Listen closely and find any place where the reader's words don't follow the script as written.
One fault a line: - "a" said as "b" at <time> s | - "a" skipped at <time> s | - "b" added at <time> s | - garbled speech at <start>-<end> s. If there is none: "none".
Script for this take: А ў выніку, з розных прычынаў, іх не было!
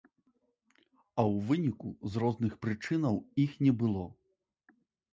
none